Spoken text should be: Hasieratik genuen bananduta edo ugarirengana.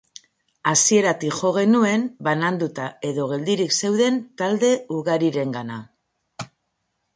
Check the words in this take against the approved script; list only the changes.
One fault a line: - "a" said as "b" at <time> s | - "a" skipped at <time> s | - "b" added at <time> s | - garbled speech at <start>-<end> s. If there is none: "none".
- "jo" added at 1.4 s
- "geldirik zeuden talde" added at 3.3 s